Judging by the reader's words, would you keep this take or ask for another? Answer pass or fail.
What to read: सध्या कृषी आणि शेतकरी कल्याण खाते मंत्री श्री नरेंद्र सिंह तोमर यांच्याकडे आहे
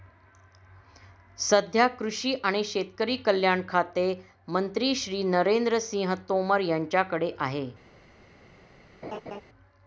pass